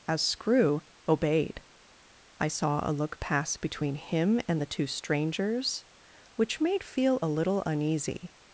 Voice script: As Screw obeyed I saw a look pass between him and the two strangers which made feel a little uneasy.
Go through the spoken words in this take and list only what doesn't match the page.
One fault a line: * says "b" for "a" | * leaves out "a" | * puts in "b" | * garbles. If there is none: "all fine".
all fine